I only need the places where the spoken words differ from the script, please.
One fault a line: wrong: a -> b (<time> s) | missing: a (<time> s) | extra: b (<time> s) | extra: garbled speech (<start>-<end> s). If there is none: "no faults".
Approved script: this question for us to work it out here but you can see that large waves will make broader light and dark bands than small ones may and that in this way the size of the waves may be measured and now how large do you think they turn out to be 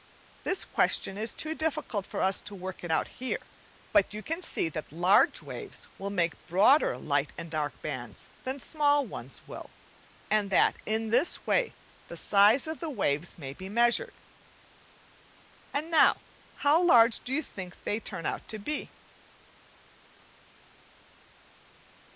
extra: is too difficult (1.1 s)
wrong: may -> will (9.5 s)